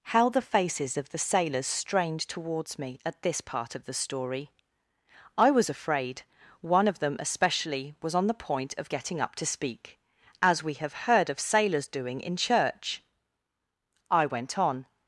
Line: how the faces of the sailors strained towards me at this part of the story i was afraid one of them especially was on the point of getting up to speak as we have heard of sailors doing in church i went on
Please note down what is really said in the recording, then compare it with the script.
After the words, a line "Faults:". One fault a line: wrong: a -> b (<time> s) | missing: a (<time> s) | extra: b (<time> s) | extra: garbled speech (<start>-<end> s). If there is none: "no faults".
how the faces of the sailors strained towards me at this part of the story i was afraid one of them especially was on the point of getting up to speak as we have heard of sailors doing in church i went on
Faults:
no faults